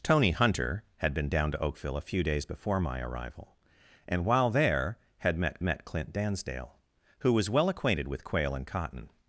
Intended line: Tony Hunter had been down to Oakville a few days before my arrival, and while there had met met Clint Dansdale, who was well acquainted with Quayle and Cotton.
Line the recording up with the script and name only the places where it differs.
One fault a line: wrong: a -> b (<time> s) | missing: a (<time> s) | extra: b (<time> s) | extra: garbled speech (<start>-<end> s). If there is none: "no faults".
no faults